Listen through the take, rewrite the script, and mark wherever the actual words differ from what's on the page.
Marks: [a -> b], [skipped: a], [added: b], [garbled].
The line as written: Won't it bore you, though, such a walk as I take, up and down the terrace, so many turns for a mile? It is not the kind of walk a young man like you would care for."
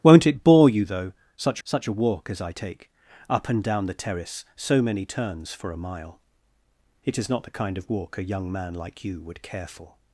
Won't it bore you, though, such [added: such] a walk as I take, up and down the terrace, so many turns for a mile? It is not the kind of walk a young man like you would care for."